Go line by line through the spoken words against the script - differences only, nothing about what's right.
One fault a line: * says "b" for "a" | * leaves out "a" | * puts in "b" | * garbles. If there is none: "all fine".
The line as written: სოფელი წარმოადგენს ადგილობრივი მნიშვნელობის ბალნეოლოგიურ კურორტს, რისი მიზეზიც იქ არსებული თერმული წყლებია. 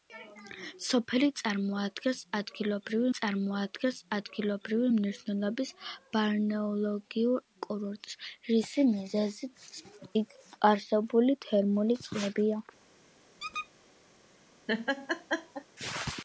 * puts in "წარმოადგენს ადგილობრივი"